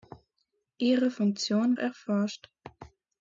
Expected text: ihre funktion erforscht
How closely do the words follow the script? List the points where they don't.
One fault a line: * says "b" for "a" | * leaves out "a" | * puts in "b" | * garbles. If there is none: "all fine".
all fine